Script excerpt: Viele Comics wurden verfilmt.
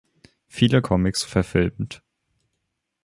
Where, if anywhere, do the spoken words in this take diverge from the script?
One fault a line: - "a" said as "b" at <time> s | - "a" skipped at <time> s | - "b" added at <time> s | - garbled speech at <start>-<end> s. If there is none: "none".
- "wurden" skipped at 1.3 s